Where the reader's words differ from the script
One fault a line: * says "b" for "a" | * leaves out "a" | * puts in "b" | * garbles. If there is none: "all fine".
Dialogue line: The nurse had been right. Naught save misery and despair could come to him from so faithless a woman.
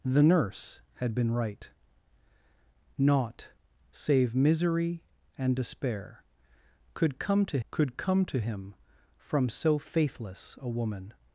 * puts in "could come to"